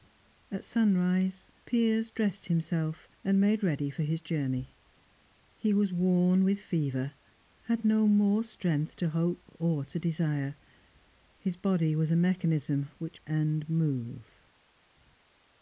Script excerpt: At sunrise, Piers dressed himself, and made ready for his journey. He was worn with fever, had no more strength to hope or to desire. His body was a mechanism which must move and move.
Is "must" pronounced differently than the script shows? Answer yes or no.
yes